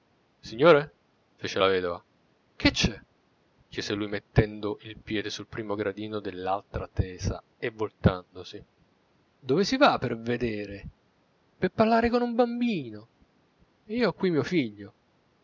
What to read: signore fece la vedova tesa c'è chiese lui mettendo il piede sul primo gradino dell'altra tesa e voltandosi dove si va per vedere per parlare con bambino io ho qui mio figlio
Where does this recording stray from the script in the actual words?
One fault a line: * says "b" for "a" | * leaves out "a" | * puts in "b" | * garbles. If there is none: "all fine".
* says "che" for "tesa"
* puts in "un"